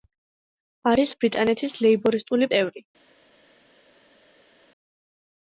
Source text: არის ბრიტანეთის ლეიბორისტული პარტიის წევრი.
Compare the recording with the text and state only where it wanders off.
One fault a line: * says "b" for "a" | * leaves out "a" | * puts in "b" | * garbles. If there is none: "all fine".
* leaves out "პარტიის"